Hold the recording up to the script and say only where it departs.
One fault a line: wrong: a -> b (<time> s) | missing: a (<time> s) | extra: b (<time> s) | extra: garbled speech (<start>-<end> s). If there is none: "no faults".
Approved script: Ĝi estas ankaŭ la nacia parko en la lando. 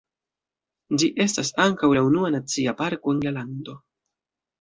extra: unua (2.1 s)